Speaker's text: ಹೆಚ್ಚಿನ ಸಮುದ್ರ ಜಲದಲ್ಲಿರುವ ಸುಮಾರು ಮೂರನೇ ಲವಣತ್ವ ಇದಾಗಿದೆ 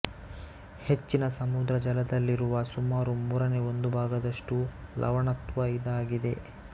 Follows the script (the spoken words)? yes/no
no